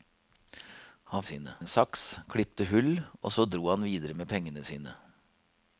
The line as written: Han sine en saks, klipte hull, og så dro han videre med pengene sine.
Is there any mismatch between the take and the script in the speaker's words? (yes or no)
no